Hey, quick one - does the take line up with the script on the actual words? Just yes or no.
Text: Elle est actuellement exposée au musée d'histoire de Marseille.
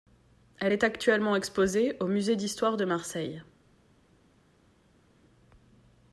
yes